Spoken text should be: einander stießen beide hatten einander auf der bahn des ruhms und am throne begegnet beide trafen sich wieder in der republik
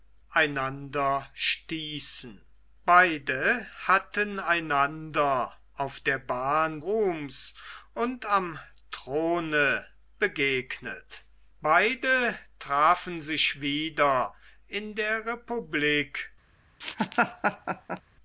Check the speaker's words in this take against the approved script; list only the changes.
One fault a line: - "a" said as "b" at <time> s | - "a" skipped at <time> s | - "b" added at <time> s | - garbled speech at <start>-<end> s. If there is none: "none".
- "des" skipped at 6.8 s